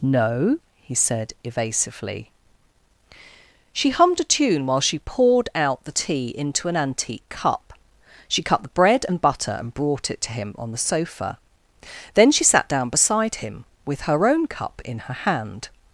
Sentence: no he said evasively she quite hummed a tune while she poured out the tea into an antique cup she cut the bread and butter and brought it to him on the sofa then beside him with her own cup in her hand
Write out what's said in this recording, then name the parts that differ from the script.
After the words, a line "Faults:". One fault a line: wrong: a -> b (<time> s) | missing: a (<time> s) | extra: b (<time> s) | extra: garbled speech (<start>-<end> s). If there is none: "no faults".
no he said evasively she hummed a tune while she poured out the tea into an antique cup she cut the bread and butter and brought it to him on the sofa then she sat down beside him with her own cup in her hand
Faults:
missing: quite (3.9 s)
extra: she sat down (12.3 s)